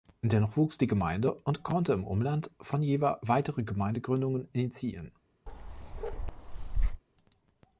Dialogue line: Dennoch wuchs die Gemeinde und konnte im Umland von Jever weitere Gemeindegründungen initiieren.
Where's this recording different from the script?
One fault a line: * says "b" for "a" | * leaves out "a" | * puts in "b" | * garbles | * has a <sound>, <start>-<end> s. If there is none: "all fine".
* has a bark, 5.5-7.0 s